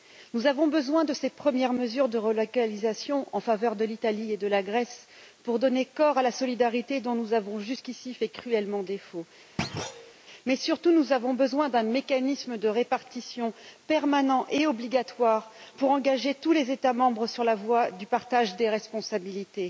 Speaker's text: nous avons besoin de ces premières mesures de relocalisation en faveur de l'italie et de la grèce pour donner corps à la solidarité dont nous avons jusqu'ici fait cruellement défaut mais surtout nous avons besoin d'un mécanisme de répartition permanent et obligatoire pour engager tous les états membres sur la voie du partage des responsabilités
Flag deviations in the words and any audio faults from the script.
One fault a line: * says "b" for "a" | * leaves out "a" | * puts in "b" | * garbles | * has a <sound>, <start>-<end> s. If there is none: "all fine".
* has a thud, 9.6-10.1 s